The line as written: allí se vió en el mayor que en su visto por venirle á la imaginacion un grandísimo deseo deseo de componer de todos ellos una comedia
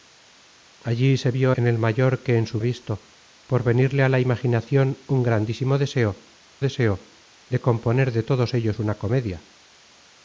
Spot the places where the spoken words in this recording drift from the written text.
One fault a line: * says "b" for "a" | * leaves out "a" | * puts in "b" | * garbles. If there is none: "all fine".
all fine